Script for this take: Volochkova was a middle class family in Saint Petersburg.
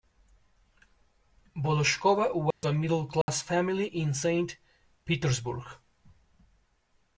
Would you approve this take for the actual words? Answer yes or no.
yes